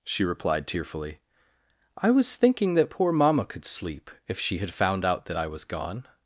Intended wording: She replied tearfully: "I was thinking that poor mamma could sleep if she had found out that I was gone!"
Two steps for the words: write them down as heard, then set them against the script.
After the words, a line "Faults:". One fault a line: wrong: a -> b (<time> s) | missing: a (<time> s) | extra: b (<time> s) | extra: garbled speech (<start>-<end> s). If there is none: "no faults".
She replied tearfully: "I was thinking that poor mamma could sleep if she had found out that I was gone!"
Faults:
no faults